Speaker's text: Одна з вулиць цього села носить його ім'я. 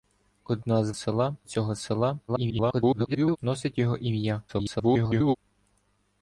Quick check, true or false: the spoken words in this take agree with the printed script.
false